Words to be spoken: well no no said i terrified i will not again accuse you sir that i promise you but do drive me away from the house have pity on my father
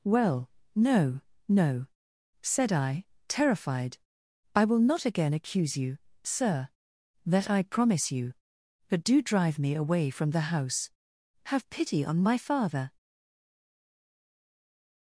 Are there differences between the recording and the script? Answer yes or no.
no